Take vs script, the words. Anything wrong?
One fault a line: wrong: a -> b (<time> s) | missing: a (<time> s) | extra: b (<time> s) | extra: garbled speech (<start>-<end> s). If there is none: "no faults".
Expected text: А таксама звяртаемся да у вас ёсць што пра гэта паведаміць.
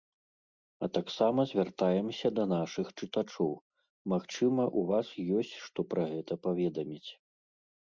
extra: нашых чытачоў магчыма (2.5 s)